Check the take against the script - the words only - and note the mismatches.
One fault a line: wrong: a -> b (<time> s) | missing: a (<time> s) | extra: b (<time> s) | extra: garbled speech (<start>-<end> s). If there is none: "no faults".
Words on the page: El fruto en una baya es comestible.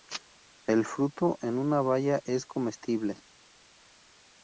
no faults